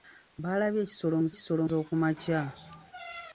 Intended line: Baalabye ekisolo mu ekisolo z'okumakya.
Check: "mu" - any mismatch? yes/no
no